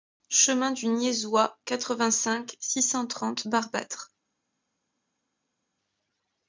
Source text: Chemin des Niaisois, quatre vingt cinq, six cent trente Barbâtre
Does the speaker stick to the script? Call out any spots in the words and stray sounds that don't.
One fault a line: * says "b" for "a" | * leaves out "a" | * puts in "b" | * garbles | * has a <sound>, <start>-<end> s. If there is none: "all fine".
* says "du" for "des"